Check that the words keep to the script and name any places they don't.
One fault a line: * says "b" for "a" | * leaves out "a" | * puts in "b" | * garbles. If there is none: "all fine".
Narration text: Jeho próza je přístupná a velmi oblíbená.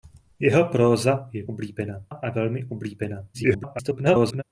* says "oblíbená" for "přístupná"
* garbles